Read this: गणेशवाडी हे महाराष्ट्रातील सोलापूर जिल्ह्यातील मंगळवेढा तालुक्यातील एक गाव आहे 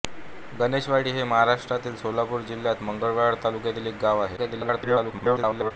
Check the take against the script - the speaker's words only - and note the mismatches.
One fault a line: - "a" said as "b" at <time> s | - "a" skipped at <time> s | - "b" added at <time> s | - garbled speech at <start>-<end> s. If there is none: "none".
- garbled speech at 4.4-5.7 s